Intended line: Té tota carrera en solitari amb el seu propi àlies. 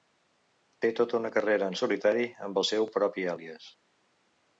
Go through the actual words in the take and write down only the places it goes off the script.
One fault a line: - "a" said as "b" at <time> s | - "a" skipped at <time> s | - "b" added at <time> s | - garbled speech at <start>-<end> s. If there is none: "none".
- "una" added at 1.2 s